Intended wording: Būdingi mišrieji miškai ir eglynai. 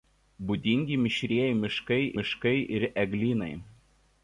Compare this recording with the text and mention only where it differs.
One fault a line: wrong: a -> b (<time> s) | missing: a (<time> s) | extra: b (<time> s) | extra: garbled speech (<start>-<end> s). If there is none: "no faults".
extra: miškai (2.2 s)